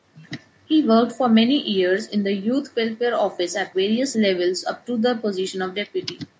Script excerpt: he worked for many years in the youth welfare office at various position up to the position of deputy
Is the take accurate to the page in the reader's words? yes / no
no